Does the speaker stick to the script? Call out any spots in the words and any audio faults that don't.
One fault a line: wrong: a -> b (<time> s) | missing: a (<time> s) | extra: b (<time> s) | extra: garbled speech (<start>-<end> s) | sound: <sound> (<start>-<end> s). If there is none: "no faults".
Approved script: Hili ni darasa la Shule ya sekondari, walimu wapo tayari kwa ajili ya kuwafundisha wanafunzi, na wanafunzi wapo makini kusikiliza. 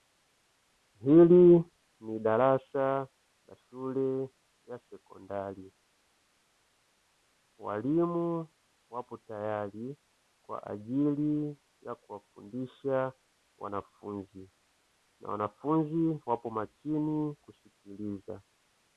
no faults